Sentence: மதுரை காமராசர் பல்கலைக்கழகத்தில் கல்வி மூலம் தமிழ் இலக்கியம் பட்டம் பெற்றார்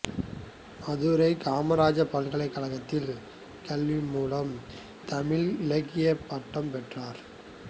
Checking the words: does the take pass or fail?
pass